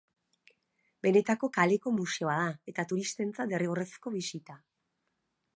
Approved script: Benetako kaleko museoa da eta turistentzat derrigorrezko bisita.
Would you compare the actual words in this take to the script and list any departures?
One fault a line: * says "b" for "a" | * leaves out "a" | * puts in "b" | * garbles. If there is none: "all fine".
all fine